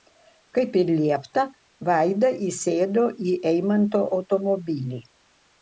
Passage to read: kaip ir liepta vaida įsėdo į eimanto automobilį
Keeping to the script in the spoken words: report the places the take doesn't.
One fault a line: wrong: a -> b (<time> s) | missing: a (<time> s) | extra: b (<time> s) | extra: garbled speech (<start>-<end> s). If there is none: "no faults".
no faults